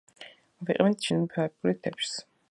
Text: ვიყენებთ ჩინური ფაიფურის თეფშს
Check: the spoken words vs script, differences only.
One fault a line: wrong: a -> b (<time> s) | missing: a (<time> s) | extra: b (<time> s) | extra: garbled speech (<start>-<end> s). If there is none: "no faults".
no faults